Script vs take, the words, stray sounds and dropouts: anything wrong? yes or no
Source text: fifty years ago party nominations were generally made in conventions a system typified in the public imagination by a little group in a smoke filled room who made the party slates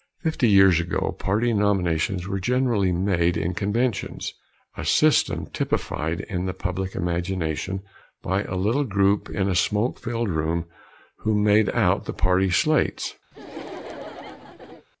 yes